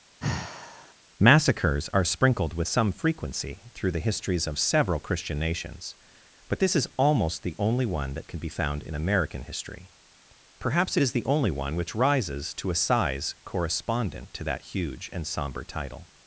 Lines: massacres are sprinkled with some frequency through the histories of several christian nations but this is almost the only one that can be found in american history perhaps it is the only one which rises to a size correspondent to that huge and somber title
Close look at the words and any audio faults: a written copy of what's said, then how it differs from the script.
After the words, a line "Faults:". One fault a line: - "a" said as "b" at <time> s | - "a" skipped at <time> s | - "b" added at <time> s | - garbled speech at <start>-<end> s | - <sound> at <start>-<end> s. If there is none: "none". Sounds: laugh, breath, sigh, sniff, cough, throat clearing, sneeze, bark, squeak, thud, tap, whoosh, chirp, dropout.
massacres are sprinkled with some frequency through the histories of several christian nations but this is almost the only one that can be found in american history perhaps it is the only one which rises to a size correspondent to that huge and somber title
Faults:
- sigh at 0.2-0.9 s